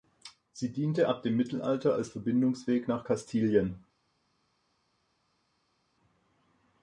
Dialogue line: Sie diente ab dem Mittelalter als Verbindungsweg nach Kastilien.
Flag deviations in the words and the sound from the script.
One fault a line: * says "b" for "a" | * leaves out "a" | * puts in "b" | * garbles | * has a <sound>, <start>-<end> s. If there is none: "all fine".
all fine